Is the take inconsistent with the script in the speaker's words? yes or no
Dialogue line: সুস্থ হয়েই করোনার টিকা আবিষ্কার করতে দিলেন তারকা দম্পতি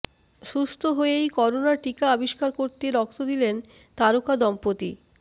yes